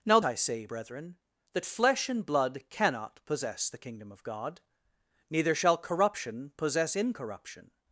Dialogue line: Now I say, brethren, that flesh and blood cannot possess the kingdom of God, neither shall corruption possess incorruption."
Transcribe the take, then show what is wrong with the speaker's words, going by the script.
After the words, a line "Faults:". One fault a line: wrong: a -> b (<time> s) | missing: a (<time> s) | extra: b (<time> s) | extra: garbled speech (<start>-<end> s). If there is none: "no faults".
Now I say, brethren, that flesh and blood cannot possess the kingdom of God, neither shall corruption possess incorruption."
Faults:
no faults